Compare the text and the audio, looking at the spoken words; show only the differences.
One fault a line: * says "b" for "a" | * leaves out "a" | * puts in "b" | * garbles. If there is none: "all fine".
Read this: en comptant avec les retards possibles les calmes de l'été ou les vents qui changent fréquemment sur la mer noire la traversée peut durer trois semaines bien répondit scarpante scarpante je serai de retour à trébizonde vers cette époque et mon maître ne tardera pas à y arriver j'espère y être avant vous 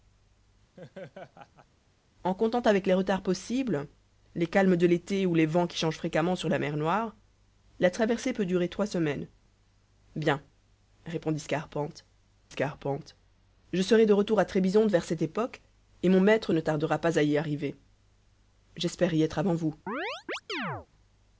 all fine